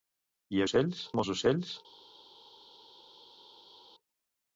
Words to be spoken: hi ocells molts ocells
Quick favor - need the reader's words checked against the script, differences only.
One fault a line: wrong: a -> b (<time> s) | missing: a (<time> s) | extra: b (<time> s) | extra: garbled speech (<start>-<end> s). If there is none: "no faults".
no faults